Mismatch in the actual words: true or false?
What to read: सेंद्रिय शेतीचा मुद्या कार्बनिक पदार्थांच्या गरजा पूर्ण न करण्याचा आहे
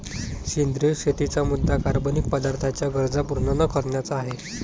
false